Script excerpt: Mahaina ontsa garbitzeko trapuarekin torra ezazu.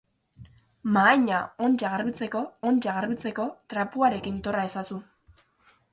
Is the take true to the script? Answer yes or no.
no